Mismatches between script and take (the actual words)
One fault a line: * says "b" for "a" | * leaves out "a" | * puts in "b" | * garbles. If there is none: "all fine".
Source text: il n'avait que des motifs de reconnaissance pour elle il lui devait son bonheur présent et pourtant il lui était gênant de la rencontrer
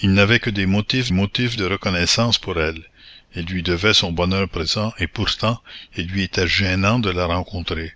* puts in "motifs"